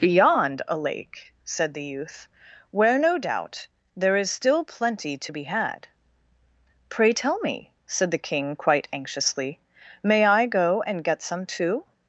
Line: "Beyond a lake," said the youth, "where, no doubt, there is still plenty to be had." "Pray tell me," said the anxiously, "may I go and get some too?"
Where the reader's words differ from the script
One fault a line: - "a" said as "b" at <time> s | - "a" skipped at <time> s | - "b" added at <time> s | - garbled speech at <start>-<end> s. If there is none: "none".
- "king quite" added at 8.2 s